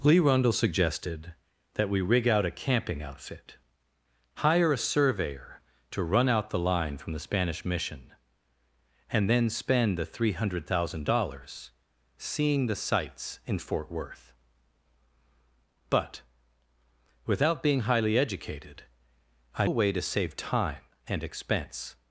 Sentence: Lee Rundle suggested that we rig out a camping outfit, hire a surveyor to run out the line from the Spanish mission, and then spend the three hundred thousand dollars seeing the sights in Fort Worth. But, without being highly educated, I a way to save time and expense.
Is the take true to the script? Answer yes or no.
yes